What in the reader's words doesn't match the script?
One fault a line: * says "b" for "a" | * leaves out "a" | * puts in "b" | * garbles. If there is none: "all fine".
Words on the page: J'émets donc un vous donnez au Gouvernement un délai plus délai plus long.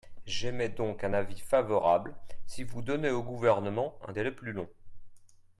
* puts in "avis favorable si"
* leaves out "délai plus"